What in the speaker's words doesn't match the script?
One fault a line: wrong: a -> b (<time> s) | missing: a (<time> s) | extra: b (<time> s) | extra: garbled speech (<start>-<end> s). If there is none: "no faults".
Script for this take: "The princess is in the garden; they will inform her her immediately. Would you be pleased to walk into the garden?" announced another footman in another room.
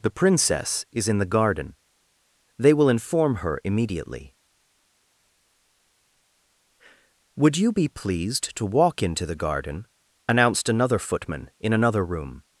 missing: her (3.6 s)